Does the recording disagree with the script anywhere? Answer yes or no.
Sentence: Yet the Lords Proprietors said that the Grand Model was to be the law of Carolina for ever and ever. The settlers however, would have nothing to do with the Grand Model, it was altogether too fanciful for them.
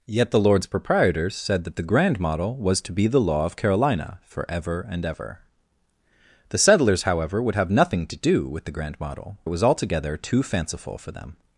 no